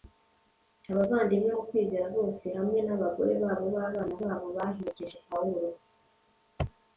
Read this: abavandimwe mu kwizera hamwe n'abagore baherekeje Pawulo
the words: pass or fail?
fail